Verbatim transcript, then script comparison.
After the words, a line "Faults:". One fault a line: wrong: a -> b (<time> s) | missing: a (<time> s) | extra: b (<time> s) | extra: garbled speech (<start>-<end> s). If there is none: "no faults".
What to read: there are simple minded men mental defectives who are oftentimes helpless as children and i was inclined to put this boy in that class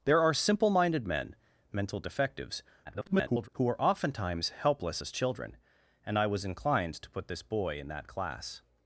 there are simple minded men mental defectives [garbled] who are oftentimes helpless as children and i was inclined to put this boy in that class
Faults:
extra: garbled speech (2.9-3.5 s)